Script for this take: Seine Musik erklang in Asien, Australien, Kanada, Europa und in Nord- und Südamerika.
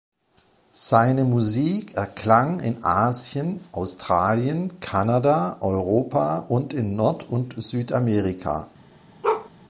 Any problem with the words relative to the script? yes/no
no